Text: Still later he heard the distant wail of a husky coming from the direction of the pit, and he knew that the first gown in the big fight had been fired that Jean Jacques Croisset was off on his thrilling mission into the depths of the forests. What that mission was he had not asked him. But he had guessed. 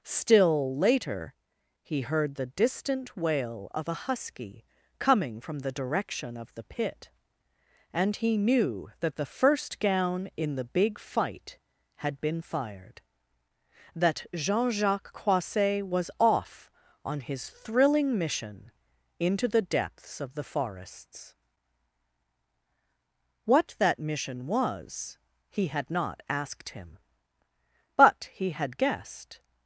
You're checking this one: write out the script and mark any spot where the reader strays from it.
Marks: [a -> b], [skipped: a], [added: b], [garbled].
Still later he heard the distant wail of a husky coming from the direction of the pit, and he knew that the first gown in the big fight had been fired that Jean Jacques Croisset was off on his thrilling mission into the depths of the forests. What that mission was he had not asked him. But he had guessed.